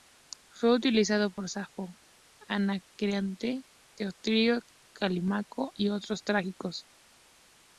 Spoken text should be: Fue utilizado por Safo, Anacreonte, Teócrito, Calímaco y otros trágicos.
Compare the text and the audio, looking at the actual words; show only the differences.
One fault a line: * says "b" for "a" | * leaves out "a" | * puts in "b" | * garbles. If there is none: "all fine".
all fine